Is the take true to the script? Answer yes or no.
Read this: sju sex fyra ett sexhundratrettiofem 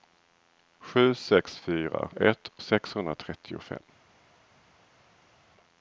yes